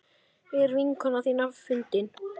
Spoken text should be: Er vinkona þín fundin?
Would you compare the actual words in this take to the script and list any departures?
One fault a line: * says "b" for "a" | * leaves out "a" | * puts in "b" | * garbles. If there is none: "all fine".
all fine